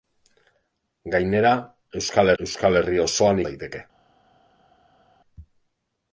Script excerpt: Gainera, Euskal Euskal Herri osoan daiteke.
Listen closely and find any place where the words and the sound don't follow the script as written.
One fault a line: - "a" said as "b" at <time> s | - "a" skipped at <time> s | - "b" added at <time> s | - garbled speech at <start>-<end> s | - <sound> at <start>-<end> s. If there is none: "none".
none